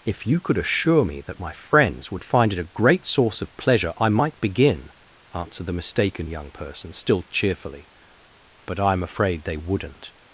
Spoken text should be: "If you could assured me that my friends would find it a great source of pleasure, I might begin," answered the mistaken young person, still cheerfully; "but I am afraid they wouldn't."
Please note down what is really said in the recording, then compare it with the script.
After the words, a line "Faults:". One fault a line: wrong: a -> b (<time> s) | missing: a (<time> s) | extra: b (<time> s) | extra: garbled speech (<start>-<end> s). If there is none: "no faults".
"If you could assure me that my friends would find it a great source of pleasure, I might begin," answered the mistaken young person, still cheerfully; "but I am afraid they wouldn't."
Faults:
wrong: assured -> assure (0.6 s)